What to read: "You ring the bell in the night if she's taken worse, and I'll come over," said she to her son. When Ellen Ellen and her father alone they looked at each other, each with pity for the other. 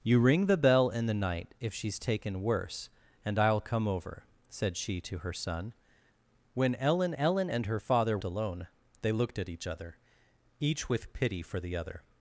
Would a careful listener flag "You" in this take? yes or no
no